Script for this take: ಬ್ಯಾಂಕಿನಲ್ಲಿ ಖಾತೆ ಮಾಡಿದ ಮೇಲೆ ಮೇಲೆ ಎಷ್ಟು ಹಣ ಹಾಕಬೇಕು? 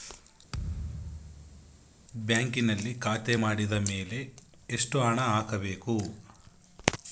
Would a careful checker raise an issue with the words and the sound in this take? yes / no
yes